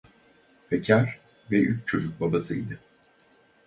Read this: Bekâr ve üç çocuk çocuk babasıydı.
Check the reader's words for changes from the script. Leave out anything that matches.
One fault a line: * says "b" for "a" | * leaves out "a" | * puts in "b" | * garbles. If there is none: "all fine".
* leaves out "çocuk"